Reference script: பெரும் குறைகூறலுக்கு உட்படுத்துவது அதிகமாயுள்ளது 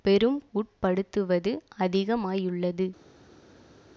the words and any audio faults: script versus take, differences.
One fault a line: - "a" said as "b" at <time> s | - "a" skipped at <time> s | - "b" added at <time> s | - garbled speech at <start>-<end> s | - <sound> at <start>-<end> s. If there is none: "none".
- "குறைகூறலுக்கு" skipped at 0.4 s